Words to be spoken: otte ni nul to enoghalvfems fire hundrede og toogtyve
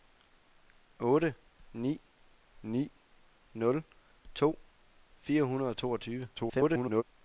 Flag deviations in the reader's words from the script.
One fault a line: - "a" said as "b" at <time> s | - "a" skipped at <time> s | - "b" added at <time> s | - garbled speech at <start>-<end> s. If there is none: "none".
- "ni" added at 2.6 s
- "enoghalvfems" skipped at 4.5 s
- garbled speech at 6.4-7.0 s